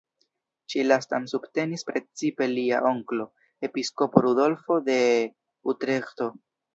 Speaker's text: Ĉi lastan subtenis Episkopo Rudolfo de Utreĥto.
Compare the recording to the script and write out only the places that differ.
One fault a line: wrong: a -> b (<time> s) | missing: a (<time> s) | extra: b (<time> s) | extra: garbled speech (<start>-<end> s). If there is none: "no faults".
extra: precipe lia onklo (1.9 s)